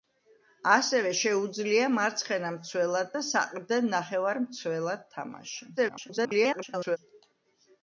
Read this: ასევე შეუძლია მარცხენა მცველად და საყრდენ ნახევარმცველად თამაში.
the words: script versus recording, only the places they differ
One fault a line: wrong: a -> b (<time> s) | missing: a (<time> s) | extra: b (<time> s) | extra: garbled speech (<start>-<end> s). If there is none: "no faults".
extra: garbled speech (5.8-7.0 s)